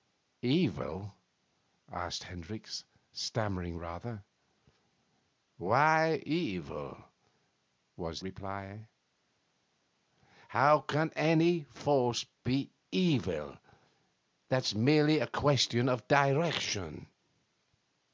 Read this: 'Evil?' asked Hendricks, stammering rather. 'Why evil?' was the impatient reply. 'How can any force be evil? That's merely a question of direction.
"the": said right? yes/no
no